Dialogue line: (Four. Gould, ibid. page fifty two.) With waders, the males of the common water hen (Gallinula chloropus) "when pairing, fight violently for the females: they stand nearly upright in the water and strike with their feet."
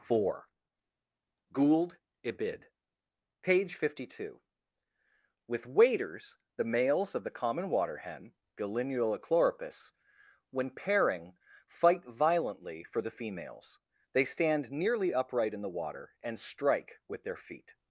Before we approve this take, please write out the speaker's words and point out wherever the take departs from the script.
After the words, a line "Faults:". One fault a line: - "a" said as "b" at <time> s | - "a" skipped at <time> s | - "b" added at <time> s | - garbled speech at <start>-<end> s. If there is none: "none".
(Four. Gould, ibid. page fifty two.) With waders, the males of the common water hen (Gallinula chloropus) "when pairing, fight violently for the females: they stand nearly upright in the water and strike with their feet."
Faults:
none